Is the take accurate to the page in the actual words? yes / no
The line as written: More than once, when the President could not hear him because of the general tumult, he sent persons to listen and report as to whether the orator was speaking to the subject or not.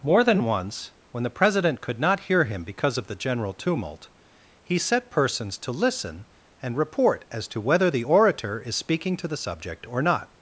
no